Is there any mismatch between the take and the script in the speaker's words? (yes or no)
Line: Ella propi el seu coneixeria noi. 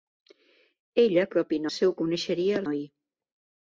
no